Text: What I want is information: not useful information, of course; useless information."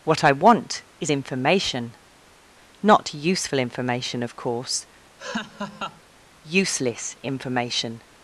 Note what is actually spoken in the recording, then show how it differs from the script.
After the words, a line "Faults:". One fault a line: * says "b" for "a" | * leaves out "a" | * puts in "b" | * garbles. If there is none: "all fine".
What I want is information: not useful information, of course; useless information."
Faults:
all fine